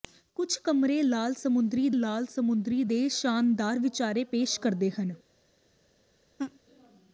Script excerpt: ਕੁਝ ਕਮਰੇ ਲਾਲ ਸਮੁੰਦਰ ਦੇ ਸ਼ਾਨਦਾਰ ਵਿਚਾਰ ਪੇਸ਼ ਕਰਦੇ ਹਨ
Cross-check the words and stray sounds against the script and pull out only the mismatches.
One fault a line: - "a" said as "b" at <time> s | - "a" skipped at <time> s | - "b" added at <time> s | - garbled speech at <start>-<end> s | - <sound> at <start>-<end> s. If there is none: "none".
- "ਲਾਲ ਸਮੁੰਦਰ" added at 1.9 s
- laugh at 6.4-6.6 s